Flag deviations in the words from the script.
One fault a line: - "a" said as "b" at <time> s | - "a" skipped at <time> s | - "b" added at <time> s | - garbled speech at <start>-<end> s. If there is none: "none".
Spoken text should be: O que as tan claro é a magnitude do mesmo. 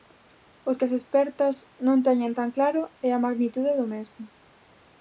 - "expertas non teñen" added at 1.0 s